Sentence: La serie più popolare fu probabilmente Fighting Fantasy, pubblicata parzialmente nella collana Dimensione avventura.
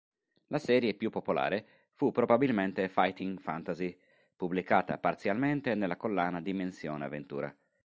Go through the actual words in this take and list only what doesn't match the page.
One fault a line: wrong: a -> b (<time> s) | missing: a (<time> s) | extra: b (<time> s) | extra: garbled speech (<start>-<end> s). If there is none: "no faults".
no faults